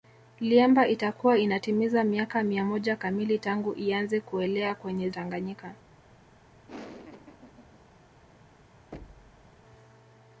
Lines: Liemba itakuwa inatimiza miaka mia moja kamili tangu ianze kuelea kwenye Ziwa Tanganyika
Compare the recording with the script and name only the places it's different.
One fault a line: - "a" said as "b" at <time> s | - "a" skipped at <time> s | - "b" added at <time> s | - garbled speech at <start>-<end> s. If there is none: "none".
- "Ziwa" skipped at 5.1 s